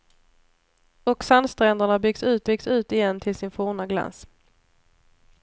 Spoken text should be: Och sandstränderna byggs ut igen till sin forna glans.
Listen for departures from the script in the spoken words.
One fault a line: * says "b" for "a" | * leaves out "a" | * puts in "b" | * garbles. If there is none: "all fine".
* puts in "byggs ut"